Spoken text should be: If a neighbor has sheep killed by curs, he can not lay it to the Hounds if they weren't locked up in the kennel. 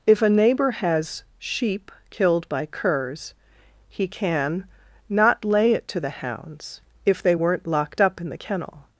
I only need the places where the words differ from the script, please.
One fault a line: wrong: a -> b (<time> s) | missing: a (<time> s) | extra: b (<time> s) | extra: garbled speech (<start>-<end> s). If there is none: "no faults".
no faults